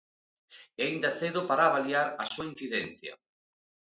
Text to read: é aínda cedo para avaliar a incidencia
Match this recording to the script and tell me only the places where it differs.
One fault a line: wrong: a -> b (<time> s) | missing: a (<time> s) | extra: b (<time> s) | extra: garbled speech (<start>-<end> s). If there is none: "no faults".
extra: súa (2.3 s)